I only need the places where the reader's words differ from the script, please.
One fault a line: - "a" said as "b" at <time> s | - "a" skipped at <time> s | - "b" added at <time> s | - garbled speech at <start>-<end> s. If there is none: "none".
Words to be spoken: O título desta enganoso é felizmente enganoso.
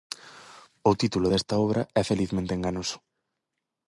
- "enganoso" said as "obra" at 1.6 s